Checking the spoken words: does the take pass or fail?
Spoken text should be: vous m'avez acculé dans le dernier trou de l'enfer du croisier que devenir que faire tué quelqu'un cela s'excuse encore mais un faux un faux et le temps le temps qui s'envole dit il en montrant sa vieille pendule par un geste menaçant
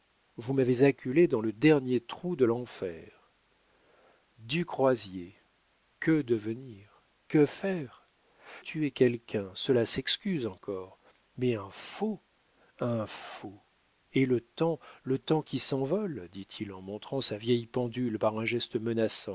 pass